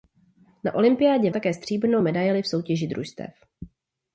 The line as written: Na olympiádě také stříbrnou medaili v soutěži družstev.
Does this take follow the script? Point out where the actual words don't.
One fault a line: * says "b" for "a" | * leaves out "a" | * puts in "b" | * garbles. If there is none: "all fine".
all fine